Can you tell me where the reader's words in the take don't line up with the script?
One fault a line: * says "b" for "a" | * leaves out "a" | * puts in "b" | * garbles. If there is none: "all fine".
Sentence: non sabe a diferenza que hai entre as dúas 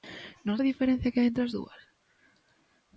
* leaves out "sabe"